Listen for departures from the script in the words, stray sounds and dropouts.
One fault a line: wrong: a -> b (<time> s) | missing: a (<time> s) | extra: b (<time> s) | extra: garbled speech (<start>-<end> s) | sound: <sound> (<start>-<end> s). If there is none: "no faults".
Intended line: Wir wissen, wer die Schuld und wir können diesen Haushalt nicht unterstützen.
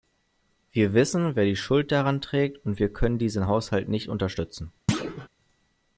extra: daran trägt (1.9 s)
sound: thud (4.9-5.3 s)